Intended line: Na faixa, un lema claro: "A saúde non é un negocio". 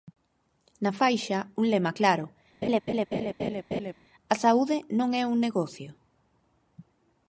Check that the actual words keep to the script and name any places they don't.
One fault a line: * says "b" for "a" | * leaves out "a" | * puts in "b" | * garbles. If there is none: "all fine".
all fine